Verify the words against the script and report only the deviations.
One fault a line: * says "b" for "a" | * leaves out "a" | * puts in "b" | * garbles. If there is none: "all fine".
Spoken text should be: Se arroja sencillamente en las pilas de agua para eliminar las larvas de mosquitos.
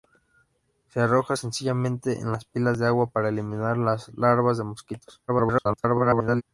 * garbles